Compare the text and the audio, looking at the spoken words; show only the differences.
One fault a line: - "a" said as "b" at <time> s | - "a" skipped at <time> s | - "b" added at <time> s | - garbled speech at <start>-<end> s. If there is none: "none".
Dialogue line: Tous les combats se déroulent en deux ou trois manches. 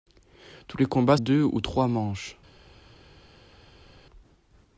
- "se déroulent en" skipped at 1.2 s